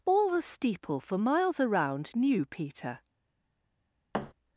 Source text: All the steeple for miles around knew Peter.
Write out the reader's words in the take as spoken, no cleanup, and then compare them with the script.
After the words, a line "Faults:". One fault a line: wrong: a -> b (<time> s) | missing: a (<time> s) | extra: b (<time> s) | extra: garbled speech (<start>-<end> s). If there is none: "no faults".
All the steeple for miles around knew Peter.
Faults:
no faults